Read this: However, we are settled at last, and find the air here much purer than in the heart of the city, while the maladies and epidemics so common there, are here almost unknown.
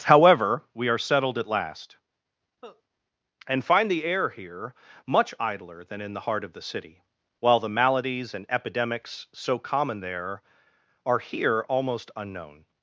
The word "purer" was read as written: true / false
false